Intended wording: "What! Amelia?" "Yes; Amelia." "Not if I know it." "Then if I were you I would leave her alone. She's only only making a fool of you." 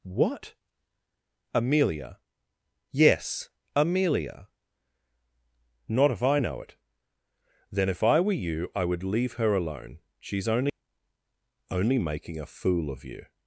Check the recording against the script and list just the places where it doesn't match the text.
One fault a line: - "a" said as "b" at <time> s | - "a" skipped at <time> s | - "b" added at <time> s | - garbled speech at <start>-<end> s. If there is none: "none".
none